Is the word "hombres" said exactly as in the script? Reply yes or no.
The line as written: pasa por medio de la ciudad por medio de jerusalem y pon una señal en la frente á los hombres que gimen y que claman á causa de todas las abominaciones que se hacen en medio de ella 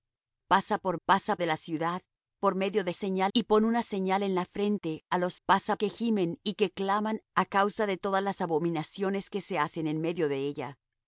no